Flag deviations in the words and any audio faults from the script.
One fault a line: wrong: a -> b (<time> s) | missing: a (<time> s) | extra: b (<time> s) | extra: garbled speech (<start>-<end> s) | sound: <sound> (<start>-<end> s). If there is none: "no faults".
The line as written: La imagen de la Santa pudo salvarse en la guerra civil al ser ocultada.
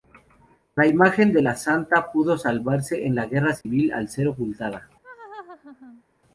sound: dropout (3.6-3.7 s)
sound: laugh (5.0-6.0 s)